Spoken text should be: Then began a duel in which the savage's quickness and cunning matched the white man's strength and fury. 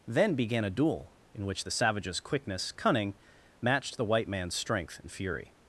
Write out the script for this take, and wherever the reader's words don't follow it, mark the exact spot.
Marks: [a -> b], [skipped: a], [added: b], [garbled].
Then began a duel in which the savage's quickness [skipped: and] cunning matched the white man's strength and fury.